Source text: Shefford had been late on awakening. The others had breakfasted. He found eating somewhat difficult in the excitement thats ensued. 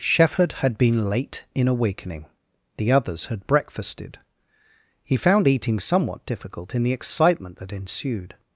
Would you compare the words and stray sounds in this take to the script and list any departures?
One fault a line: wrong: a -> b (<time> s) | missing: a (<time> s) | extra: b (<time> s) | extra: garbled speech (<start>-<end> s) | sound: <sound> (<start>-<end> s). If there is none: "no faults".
wrong: on -> in (1.5 s)
wrong: thats -> that (7.6 s)